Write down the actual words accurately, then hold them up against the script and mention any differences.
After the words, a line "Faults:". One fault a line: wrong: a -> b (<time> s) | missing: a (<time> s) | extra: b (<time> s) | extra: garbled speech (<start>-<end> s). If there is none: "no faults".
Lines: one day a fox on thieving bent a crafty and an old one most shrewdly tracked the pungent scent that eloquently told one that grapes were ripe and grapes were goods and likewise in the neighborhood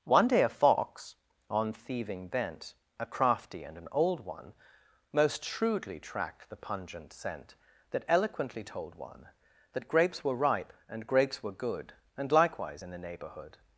one day a fox on thieving bent a crafty and an old one most shrewdly tracked the pungent scent that eloquently told one that grapes were ripe and grapes were good and likewise in the neighborhood
Faults:
wrong: goods -> good (11.5 s)